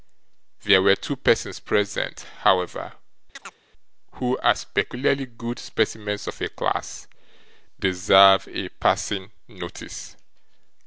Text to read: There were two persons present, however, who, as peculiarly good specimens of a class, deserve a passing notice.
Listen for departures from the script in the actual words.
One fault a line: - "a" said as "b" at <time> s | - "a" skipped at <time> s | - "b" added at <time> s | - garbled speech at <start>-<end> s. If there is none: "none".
none